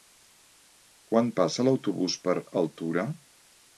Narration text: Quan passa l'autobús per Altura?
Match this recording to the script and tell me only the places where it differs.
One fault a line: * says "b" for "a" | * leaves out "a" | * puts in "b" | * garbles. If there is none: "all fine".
all fine